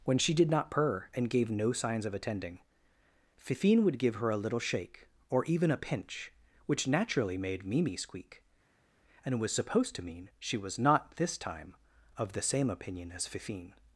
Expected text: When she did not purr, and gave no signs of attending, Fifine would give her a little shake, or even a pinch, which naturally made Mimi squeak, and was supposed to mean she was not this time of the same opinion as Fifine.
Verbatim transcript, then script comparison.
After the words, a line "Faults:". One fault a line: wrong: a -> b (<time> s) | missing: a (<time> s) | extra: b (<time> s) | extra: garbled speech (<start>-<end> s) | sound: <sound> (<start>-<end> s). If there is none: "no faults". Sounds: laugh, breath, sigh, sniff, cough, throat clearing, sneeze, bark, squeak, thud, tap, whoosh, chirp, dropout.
When she did not purr, and gave no signs of attending, Fifine would give her a little shake, or even a pinch, which naturally made Mimi squeak, and was supposed to mean she was not this time of the same opinion as Fifine.
Faults:
no faults